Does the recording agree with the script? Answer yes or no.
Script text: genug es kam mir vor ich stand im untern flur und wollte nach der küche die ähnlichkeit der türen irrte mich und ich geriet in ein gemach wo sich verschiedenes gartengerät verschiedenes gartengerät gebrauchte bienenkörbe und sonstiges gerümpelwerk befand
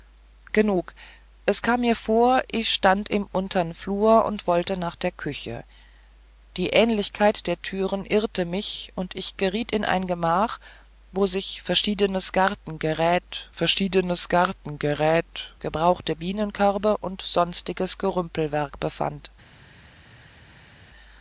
yes